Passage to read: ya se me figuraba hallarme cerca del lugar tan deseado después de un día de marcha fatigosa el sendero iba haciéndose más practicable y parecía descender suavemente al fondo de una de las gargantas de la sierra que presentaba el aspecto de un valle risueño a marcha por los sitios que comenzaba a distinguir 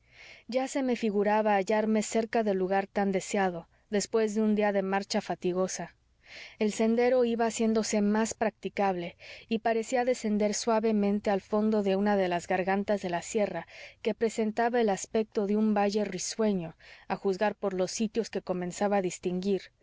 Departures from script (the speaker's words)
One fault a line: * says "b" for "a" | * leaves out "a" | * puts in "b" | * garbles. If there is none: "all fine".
* says "juzgar" for "marcha"